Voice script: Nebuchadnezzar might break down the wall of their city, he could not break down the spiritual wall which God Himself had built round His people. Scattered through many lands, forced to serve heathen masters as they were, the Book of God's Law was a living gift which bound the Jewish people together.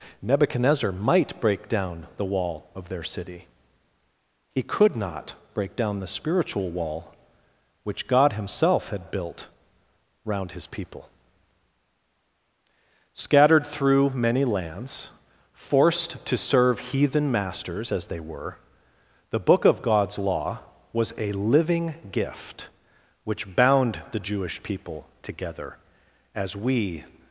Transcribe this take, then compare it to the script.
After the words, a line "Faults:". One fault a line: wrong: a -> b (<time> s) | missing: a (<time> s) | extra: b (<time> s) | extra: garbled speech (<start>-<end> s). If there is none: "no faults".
Nebuchadnezzar might break down the wall of their city, he could not break down the spiritual wall which God Himself had built round His people. Scattered through many lands, forced to serve heathen masters as they were, the Book of God's Law was a living gift which bound the Jewish people together. As we
Faults:
extra: As we (26.4 s)